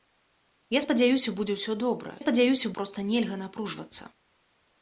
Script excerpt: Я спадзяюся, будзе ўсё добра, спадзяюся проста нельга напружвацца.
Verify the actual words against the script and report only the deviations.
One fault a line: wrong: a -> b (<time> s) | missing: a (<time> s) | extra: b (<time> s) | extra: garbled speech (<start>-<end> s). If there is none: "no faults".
no faults